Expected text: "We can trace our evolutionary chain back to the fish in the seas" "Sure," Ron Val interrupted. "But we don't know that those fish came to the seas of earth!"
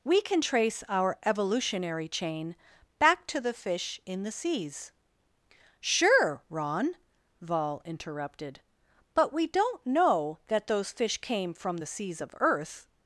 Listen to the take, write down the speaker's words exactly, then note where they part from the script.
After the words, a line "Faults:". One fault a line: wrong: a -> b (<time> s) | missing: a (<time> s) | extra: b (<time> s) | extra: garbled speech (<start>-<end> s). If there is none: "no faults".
"We can trace our evolutionary chain back to the fish in the seas" "Sure," Ron Val interrupted. "But we don't know that those fish came from the seas of earth!"
Faults:
wrong: to -> from (11.5 s)